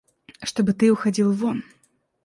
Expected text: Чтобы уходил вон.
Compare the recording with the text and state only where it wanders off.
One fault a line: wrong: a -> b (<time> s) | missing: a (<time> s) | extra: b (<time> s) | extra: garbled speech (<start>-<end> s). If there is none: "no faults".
extra: ты (0.7 s)